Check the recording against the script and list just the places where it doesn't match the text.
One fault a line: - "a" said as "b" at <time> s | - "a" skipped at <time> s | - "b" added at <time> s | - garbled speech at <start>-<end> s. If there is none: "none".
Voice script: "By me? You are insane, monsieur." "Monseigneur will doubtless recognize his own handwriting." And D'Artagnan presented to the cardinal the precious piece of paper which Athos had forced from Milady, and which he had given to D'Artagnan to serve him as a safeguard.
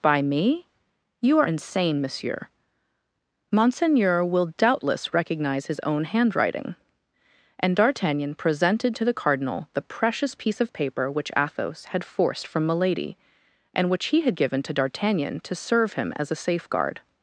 none